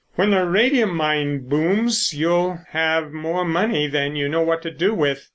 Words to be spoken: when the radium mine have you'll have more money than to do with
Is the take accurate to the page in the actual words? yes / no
no